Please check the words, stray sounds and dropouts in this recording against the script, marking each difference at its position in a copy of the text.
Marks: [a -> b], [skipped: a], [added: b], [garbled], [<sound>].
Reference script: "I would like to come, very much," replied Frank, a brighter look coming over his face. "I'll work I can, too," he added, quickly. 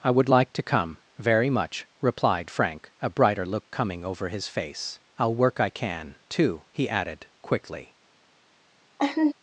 "I would like to come, very much," replied Frank, a brighter look coming over his face. "I'll work I can, too," he added, quickly. [laugh]